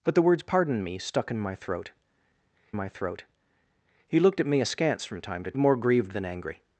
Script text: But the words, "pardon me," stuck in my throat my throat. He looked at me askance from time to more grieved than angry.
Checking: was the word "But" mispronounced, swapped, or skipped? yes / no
no